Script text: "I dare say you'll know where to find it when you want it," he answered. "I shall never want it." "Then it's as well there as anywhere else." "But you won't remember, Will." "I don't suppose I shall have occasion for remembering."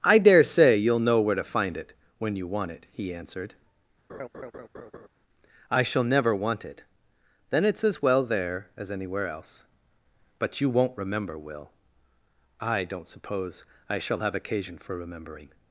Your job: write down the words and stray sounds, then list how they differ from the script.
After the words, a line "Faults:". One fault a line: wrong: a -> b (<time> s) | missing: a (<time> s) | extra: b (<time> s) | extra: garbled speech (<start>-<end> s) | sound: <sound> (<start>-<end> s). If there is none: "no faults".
"I dare say you'll know where to find it when you want it," he answered. "I shall never want it." "Then it's as well there as anywhere else." "But you won't remember, Will." "I don't suppose I shall have occasion for remembering."
Faults:
sound: laugh (4.1-5.1 s)